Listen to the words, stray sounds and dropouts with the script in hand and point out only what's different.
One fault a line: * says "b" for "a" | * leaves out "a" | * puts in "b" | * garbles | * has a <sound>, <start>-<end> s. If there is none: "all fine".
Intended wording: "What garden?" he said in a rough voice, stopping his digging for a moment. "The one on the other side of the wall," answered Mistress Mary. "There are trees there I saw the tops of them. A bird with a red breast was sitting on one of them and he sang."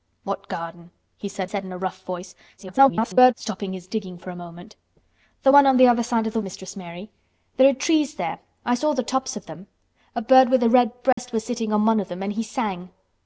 * puts in "said"
* garbles
* leaves out "wall answered"
* has a dropout, 11.1-11.2 s